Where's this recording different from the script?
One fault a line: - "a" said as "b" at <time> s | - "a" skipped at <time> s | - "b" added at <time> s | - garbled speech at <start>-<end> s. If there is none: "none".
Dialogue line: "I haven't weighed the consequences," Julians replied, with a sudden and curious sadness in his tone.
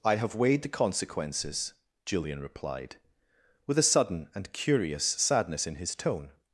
- "haven't" said as "have" at 0.1 s
- "Julians" said as "Julian" at 2.0 s